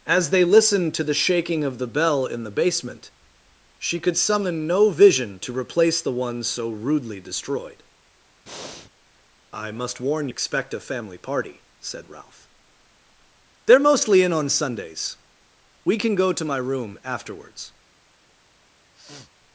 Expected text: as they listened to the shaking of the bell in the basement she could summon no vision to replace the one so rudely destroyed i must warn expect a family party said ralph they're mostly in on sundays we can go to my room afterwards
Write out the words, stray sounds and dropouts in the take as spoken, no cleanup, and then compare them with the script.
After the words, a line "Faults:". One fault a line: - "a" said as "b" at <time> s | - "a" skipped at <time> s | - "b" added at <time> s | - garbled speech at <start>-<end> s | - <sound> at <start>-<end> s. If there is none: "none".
as they listened to the shaking of the bell in the basement she could summon no vision to replace the one so rudely destroyed i must warn expect a family party said ralph they're mostly in on sundays we can go to my room afterwards
Faults:
- breath at 8.5-8.9 s
- sniff at 18.9-19.3 s